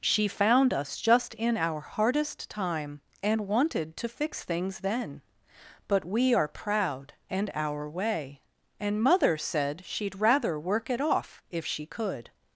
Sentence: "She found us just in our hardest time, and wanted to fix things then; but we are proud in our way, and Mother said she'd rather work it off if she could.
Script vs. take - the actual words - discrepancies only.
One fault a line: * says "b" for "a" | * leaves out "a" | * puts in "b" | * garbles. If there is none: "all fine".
* says "and" for "in"